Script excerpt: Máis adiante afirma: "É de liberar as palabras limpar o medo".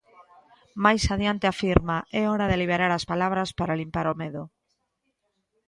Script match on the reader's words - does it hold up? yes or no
no